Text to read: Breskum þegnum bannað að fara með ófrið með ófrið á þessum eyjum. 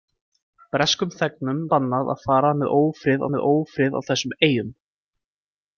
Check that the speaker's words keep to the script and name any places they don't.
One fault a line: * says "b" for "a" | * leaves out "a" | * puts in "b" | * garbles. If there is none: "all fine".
all fine